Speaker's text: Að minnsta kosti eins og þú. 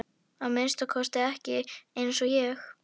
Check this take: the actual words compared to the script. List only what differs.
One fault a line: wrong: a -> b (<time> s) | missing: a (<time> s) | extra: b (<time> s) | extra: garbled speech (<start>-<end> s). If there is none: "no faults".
extra: ekki (1.3 s)
wrong: þú -> ég (2.4 s)